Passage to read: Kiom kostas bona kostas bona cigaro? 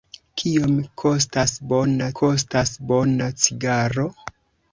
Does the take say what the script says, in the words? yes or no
yes